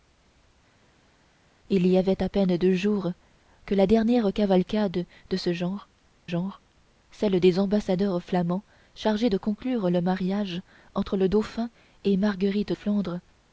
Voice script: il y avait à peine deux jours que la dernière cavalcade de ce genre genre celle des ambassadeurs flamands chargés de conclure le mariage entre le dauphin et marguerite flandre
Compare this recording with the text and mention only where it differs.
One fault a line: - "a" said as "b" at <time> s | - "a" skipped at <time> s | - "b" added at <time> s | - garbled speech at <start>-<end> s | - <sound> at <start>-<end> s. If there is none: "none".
none